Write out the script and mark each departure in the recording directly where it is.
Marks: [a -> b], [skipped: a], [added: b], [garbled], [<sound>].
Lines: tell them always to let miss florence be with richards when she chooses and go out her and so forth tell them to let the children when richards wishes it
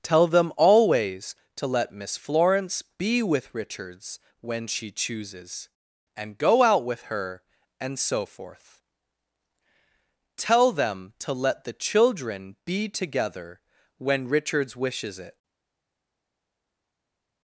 tell them always to let miss florence be with richards when she chooses and go out [added: with] her and so forth tell them to let the children [added: be together] when richards wishes it